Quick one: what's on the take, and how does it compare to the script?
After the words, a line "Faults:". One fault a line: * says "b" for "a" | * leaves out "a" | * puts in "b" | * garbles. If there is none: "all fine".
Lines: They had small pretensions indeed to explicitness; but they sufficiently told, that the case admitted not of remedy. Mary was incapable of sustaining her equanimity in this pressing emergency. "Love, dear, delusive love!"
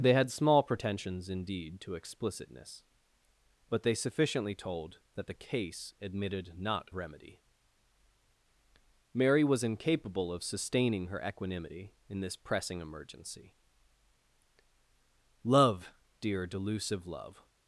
They had small pretensions indeed to explicitness; but they sufficiently told, that the case admitted not remedy. Mary was incapable of sustaining her equanimity in this pressing emergency. "Love, dear, delusive love!"
Faults:
* leaves out "of"